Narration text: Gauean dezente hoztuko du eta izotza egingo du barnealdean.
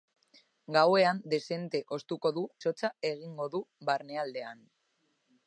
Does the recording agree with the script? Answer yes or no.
no